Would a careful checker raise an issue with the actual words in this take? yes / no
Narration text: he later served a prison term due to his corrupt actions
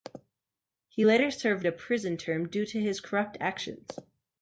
no